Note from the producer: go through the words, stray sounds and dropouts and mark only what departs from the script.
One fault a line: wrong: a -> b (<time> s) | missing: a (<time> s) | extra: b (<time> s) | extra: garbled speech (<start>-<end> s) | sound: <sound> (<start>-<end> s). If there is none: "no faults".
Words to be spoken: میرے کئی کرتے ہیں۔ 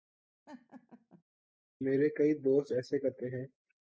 sound: laugh (0.5-1.2 s)
extra: دوست ایسے (2.3 s)